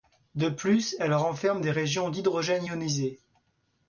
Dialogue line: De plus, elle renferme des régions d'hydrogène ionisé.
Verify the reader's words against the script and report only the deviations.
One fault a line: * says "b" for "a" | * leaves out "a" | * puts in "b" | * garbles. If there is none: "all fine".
all fine